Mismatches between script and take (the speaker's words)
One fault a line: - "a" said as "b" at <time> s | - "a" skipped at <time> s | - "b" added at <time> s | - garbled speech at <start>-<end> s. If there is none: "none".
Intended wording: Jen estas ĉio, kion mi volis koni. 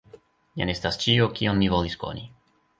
none